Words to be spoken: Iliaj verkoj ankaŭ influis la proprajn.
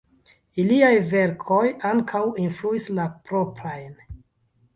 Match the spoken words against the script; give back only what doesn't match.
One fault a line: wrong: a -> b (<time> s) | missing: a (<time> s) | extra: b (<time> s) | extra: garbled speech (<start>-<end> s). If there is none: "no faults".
no faults